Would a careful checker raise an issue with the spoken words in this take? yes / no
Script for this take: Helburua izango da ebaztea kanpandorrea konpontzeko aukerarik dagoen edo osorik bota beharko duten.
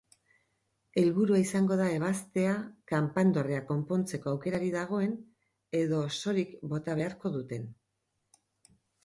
no